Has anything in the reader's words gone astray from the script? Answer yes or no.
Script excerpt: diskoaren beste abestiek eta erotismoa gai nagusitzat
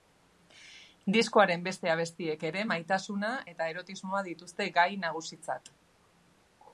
yes